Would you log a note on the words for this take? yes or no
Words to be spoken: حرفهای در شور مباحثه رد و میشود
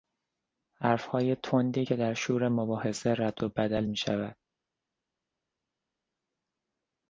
yes